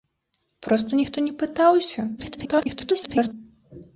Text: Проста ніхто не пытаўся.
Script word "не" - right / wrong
right